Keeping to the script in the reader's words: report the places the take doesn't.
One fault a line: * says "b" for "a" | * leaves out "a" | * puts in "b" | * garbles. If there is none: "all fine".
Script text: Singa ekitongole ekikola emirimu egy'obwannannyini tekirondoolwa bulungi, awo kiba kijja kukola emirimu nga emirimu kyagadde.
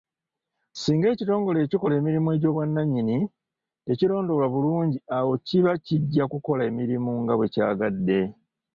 * says "bwe" for "emirimu"